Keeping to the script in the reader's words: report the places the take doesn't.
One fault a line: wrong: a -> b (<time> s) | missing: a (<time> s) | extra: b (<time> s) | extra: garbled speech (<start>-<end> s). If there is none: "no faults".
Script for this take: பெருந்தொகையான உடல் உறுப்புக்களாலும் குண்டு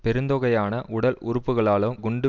no faults